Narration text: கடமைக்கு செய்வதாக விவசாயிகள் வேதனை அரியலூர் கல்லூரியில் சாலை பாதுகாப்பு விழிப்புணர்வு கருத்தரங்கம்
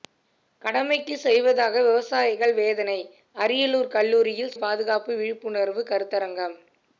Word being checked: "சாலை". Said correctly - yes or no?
no